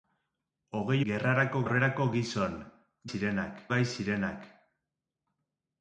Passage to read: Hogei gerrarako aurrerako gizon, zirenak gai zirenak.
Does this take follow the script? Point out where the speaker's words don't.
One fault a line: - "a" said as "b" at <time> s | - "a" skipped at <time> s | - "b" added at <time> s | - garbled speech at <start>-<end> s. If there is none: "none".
none